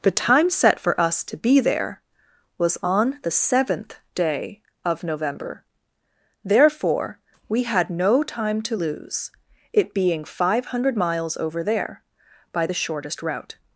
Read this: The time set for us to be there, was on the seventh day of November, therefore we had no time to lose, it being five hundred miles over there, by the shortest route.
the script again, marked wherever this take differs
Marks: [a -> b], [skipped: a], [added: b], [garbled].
The time set for us to be there, was on the seventh day of November, therefore we had no time to lose, it being five hundred miles over there, by the shortest route.